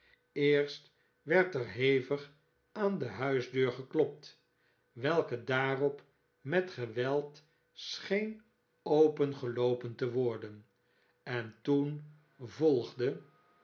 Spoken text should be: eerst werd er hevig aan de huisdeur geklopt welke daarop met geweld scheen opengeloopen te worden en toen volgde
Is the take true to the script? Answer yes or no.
yes